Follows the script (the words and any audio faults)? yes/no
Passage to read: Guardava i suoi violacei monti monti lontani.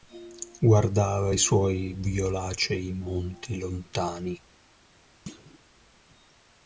no